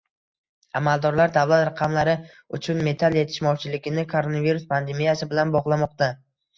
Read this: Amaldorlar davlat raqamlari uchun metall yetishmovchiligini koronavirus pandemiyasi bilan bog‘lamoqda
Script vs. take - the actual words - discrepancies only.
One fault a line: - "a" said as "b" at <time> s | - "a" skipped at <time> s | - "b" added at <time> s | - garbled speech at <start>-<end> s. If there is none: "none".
none